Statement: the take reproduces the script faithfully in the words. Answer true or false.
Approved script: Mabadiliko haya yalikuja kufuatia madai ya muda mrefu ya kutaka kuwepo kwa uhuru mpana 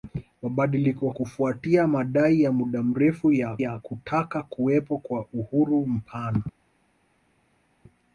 false